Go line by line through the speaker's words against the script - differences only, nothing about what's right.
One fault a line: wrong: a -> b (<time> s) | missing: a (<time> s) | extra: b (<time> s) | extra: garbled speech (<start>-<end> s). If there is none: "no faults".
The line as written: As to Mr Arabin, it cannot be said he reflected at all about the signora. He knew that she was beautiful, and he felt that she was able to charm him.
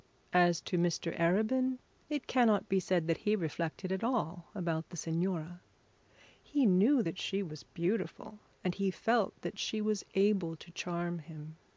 extra: that (3.0 s)